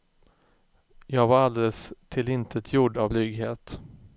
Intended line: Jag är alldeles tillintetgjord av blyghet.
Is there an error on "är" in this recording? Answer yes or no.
yes